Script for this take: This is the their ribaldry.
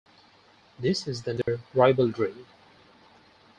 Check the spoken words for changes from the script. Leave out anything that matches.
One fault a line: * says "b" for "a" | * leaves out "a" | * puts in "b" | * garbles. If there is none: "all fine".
all fine